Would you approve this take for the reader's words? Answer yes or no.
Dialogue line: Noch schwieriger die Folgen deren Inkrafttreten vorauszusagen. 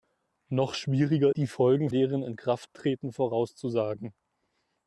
yes